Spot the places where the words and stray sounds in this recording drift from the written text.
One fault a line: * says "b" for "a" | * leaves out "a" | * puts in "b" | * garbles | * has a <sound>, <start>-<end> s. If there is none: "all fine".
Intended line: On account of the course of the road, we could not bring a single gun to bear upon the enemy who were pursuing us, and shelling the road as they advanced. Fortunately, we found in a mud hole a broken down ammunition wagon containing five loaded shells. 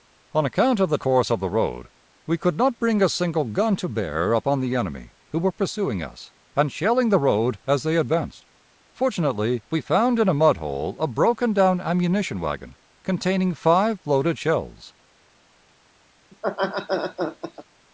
* has a laugh, 16.3-17.6 s